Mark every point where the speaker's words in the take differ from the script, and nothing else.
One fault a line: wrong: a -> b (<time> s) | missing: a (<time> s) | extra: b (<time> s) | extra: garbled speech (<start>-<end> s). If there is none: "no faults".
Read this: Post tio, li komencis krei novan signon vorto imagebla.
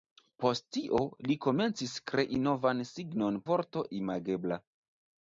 no faults